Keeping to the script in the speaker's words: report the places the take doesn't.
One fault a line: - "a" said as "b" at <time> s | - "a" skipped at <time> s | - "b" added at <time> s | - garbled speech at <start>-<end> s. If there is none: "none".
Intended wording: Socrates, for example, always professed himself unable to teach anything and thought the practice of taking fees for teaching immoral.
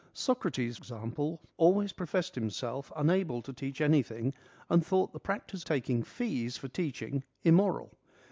- "for" skipped at 0.8 s
- "of" skipped at 5.6 s